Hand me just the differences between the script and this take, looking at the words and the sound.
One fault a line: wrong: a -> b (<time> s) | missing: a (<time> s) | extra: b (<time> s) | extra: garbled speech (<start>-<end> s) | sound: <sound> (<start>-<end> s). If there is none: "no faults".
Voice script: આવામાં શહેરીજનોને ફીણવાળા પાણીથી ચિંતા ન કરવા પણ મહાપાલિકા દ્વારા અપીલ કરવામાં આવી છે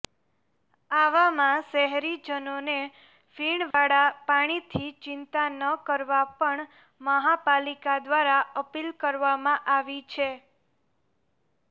sound: dropout (3.7-3.7 s)